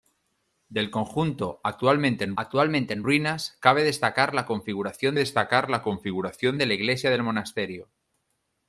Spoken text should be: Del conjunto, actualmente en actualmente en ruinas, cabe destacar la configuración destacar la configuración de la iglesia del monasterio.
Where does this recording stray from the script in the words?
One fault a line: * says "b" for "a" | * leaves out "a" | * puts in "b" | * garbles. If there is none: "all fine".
all fine